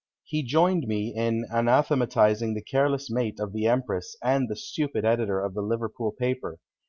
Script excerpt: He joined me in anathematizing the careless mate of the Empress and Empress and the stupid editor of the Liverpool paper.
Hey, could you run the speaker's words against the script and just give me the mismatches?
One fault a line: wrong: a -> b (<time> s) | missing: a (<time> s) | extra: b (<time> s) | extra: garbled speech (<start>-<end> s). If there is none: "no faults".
missing: Empress and (4.5 s)